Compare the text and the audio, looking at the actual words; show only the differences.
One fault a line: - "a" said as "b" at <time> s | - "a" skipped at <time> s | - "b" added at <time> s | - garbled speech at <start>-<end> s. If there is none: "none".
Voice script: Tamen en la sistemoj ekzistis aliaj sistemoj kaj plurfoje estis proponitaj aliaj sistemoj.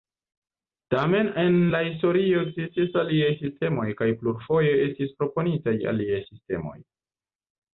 - "sistemoj" said as "historio" at 1.9 s